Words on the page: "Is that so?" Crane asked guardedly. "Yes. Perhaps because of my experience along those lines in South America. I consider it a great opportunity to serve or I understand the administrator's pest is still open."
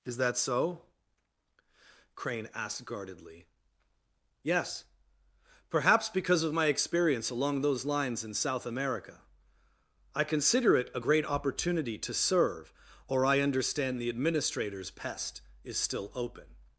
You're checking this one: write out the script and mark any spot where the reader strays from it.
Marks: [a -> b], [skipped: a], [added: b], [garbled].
"Is that so?" Crane asked guardedly. "Yes. Perhaps because of my experience along those lines in South America. I consider it a great opportunity to serve or I understand the administrator's pest is still open."